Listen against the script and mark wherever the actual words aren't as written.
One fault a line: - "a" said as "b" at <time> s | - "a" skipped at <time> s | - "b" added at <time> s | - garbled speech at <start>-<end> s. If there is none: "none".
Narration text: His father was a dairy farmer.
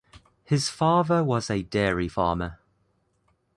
none